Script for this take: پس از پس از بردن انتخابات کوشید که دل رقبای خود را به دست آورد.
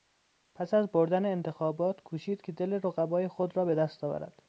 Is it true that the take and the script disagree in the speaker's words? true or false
true